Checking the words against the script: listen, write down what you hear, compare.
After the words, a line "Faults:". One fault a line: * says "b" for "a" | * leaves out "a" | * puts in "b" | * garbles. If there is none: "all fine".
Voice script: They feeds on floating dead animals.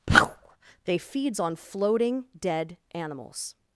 They feeds on floating dead animals.
Faults:
all fine